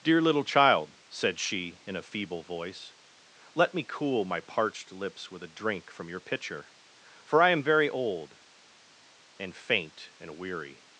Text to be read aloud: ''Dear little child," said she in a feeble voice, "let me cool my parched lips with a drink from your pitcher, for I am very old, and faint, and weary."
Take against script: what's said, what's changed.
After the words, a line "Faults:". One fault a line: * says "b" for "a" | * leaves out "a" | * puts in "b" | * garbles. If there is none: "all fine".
''Dear little child," said she in a feeble voice, "let me cool my parched lips with a drink from your pitcher, for I am very old, and faint, and weary."
Faults:
all fine